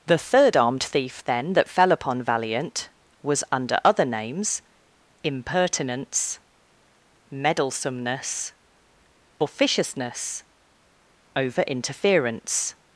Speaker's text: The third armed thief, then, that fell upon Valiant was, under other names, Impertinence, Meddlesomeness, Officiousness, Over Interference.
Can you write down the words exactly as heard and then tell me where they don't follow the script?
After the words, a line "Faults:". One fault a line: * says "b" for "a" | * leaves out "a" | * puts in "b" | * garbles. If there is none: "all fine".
The third armed thief, then, that fell upon Valiant was, under other names, Impertinence, Meddlesomeness, Officiousness, Over Interference.
Faults:
all fine